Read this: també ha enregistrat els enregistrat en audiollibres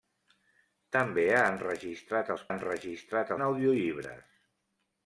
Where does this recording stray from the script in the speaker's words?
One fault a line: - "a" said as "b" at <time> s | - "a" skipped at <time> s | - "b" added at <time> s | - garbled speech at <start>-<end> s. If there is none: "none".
none